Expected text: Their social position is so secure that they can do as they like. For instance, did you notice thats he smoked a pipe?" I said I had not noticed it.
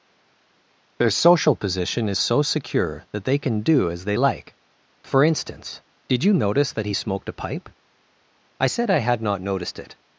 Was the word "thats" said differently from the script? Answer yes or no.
yes